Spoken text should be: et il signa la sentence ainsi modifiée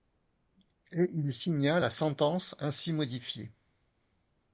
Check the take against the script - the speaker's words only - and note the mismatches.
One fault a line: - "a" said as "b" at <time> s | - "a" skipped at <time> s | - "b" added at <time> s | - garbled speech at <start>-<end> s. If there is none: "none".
none